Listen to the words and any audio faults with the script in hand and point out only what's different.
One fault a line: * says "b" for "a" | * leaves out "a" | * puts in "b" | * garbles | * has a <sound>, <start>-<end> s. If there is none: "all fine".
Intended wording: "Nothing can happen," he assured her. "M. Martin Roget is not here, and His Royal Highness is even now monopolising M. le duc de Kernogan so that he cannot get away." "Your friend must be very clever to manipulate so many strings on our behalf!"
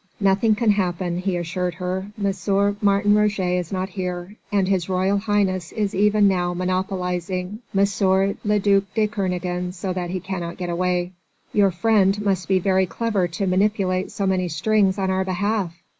all fine